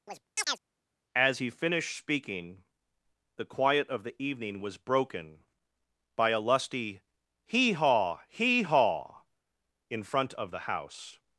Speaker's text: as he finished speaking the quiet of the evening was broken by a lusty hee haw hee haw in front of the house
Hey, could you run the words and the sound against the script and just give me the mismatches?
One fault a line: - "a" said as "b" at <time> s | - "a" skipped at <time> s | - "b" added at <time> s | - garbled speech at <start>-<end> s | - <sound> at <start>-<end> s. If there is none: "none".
- chirp at 0.1-0.6 s